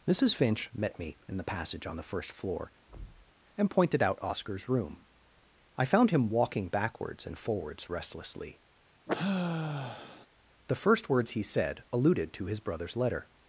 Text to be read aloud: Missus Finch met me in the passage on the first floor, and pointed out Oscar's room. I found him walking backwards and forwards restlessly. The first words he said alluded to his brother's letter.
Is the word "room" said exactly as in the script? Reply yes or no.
yes